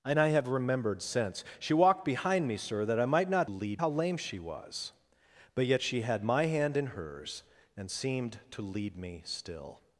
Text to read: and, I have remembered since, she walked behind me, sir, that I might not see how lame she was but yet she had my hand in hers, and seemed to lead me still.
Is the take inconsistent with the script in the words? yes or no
yes